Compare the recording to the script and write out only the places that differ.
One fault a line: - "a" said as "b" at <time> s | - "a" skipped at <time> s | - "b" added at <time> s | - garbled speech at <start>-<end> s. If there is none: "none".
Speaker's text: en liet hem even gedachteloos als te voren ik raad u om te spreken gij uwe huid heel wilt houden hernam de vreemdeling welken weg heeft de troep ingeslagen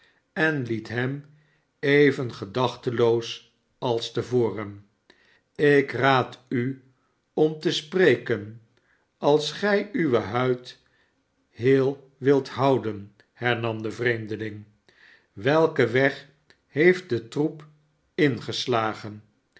- "als" added at 9.2 s